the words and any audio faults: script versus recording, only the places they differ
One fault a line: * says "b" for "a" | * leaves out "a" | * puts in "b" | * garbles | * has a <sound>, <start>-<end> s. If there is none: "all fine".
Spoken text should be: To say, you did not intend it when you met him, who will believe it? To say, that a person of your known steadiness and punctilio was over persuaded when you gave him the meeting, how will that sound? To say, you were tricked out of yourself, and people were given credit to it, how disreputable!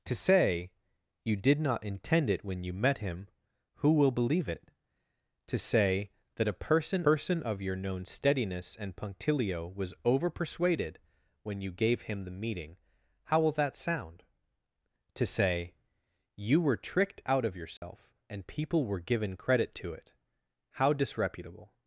* puts in "person"
* has a dropout, 17.8-17.8 s